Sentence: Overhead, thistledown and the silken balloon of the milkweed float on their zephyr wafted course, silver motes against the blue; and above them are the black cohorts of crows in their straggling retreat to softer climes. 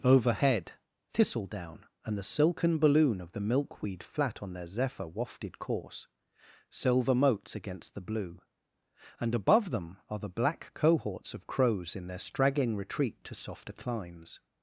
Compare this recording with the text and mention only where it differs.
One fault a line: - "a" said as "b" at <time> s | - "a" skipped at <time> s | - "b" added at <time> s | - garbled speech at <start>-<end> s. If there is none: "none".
- "float" said as "flat" at 4.0 s